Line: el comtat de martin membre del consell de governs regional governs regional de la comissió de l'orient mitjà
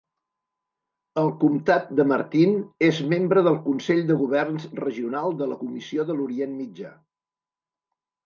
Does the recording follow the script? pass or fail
fail